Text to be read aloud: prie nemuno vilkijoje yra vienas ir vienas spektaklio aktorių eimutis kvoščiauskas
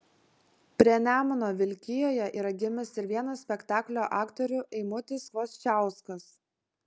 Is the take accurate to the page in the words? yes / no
no